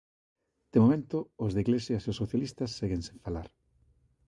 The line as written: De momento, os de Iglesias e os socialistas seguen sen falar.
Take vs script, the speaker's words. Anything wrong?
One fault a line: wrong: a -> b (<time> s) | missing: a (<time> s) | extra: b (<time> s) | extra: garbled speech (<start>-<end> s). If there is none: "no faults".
no faults